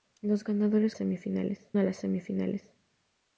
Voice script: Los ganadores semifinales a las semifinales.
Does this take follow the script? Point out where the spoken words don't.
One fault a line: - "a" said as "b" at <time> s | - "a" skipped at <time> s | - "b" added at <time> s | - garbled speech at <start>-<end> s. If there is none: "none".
none